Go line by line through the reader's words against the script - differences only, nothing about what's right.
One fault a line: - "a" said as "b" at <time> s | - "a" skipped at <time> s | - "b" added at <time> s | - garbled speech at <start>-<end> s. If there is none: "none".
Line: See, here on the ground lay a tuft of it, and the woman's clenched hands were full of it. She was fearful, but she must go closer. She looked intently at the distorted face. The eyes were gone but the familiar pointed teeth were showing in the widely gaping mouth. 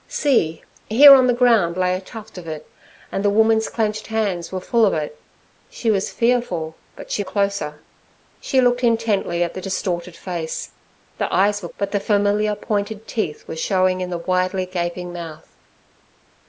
- "must go" skipped at 7.2 s
- "gone" skipped at 11.7 s